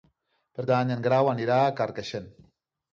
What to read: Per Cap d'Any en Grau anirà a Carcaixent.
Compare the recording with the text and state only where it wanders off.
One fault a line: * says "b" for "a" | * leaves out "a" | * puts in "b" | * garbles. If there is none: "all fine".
* leaves out "Cap"